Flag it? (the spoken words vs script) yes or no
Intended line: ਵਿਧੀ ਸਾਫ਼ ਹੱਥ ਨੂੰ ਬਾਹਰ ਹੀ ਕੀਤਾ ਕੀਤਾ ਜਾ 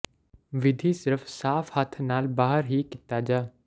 yes